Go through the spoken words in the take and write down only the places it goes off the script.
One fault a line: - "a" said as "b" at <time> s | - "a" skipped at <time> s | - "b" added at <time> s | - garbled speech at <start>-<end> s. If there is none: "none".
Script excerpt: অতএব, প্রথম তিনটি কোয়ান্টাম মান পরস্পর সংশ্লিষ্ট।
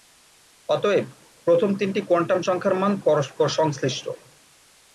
- "সংখ্যার" added at 2.4 s